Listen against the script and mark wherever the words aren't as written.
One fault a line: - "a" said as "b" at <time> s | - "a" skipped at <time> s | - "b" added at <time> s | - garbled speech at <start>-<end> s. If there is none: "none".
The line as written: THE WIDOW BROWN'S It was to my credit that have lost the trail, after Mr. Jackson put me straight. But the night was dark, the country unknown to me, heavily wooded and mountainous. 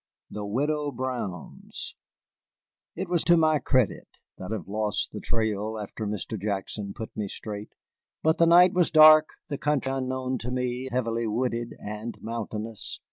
none